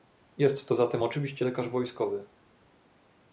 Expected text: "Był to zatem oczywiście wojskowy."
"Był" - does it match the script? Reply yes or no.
no